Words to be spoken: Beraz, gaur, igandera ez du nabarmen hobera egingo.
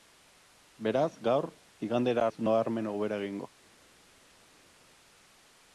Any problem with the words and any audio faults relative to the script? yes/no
no